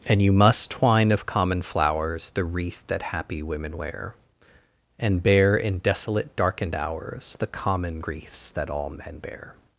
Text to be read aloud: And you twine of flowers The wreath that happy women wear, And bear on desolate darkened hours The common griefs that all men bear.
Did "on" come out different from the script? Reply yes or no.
yes